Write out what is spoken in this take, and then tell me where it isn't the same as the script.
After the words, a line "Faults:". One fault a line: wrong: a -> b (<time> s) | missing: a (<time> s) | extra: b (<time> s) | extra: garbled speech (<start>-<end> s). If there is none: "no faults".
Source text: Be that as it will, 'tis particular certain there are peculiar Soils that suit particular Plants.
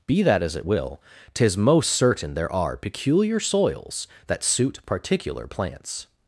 Be that as it will, 'tis most certain there are peculiar Soils that suit particular Plants.
Faults:
wrong: particular -> most (1.6 s)